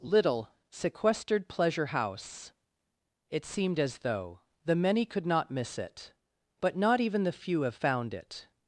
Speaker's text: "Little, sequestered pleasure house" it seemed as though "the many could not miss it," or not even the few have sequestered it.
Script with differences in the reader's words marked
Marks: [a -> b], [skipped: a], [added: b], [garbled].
"Little, sequestered pleasure house" it seemed as though "the many could not miss it," [or -> but] not even the few have [sequestered -> found] it.